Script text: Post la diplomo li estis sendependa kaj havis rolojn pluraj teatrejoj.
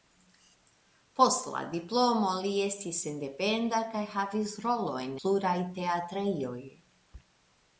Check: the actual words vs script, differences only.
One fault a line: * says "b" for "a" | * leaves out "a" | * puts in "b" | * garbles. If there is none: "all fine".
all fine